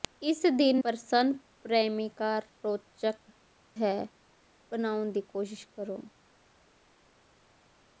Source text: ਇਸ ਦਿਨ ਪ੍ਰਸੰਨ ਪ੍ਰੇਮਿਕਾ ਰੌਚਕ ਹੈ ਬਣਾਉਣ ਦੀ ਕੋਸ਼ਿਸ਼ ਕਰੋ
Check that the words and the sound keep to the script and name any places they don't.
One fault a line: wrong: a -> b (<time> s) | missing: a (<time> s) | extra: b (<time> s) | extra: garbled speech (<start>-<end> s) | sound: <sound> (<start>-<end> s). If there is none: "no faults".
no faults